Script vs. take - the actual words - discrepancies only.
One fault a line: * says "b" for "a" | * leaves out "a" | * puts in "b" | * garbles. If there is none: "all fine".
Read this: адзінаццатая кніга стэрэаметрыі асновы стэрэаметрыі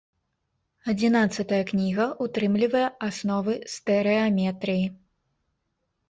* says "ўтрымлівае" for "стэрэаметрыі"